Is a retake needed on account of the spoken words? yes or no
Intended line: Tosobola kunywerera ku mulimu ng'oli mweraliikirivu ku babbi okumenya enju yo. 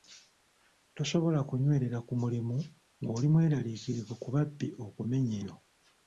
yes